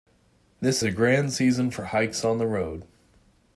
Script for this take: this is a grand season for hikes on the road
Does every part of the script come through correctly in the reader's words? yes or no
no